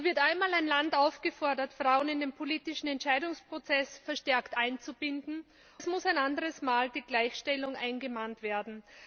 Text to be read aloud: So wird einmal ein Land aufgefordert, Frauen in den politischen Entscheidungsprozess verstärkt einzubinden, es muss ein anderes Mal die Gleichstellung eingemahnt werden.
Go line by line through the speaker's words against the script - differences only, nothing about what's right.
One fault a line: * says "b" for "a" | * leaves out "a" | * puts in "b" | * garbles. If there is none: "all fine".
all fine